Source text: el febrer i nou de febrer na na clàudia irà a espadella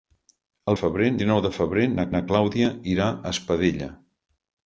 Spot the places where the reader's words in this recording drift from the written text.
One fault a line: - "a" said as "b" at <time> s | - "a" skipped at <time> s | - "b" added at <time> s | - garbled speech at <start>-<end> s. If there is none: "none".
none